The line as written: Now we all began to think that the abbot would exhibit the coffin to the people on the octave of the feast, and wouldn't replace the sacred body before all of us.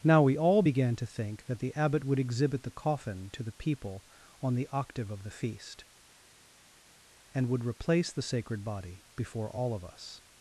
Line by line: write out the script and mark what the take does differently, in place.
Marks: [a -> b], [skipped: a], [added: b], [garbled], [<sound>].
Now we all began to think that the abbot would exhibit the coffin to the people on the octave of the feast, and [wouldn't -> would] replace the sacred body before all of us.